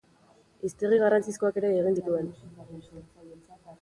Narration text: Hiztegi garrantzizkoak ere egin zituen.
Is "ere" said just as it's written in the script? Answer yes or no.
yes